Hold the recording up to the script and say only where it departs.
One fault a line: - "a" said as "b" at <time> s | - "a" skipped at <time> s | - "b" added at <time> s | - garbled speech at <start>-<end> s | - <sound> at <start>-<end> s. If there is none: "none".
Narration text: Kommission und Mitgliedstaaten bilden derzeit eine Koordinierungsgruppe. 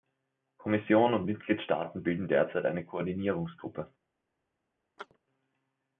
- chirp at 5.0-5.2 s